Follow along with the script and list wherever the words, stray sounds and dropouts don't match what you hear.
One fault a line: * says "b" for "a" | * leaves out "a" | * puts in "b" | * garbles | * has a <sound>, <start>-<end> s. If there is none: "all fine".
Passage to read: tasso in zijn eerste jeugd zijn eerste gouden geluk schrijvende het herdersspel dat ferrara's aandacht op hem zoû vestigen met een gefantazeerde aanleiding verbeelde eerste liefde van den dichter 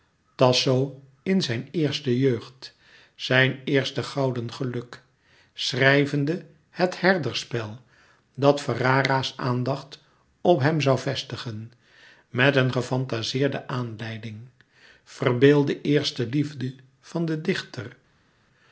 all fine